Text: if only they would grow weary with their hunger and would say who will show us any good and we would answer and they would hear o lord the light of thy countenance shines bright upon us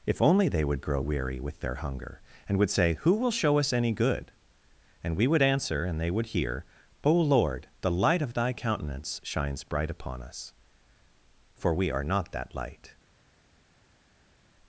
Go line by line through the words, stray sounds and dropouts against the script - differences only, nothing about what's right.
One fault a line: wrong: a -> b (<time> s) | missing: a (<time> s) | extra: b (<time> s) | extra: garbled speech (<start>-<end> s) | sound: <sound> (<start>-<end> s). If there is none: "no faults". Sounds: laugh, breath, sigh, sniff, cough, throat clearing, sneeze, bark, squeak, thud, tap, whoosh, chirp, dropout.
extra: for we are not that light (11.6 s)